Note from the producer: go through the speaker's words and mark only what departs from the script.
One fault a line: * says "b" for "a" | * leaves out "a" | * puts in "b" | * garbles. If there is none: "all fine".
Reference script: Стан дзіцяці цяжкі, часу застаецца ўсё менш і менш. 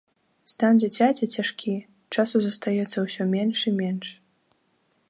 all fine